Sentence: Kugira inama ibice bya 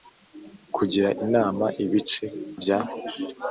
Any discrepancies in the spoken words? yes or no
no